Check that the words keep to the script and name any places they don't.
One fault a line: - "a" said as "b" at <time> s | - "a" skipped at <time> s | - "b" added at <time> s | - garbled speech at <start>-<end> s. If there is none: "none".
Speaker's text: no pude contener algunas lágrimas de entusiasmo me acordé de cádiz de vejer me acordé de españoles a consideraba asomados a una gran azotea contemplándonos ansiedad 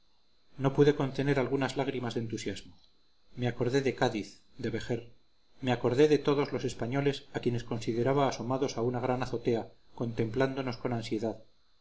- "todos los" added at 6.2 s
- "quienes" added at 7.4 s
- "con" added at 10.8 s